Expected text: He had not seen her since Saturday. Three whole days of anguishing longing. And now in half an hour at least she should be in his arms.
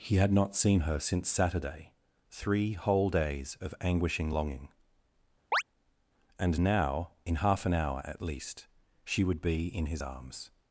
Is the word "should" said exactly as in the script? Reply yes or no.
no